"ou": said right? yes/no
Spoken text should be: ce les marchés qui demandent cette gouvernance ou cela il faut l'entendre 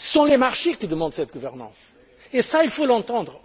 no